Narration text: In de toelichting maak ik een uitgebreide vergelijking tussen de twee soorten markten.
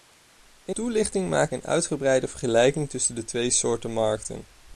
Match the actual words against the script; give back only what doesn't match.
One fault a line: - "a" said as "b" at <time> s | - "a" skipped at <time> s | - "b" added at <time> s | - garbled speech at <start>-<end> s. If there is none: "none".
- "de" skipped at 0.8 s
- "ik" skipped at 1.5 s